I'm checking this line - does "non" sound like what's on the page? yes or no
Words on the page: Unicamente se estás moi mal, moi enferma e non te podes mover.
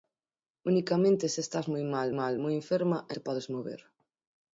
no